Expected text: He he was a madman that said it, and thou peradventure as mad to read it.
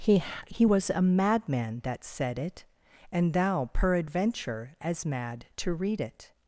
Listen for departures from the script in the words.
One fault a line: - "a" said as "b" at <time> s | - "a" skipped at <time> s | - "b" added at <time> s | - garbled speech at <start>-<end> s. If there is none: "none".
none